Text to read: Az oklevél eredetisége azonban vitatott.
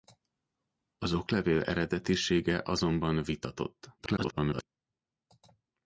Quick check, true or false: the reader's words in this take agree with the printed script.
false